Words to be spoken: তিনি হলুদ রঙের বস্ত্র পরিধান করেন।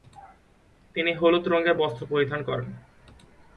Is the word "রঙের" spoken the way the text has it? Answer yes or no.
yes